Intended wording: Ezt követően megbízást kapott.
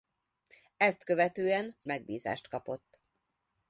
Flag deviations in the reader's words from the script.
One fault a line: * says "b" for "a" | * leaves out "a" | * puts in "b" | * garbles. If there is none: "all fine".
all fine